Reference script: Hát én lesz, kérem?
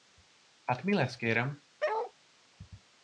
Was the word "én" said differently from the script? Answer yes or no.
yes